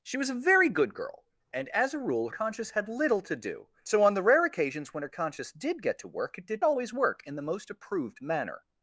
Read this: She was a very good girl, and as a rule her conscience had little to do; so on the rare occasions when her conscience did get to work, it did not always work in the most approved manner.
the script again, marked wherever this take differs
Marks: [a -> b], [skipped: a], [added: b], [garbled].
She was a very good girl, and as a rule [skipped: her] conscience had little to do; so on the rare occasions when her conscience did get to work, it did [skipped: not] always work in the most approved manner.